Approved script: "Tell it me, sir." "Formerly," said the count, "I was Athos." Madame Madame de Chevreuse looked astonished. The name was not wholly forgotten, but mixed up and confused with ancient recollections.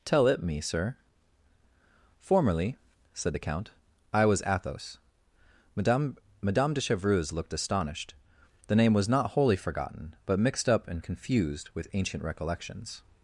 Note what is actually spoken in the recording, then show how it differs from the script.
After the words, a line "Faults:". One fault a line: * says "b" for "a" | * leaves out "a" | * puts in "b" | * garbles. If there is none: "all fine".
"Tell it me, sir." "Formerly," said the count, "I was Athos." Madame Madame de Chevreuse looked astonished. The name was not wholly forgotten, but mixed up and confused with ancient recollections.
Faults:
all fine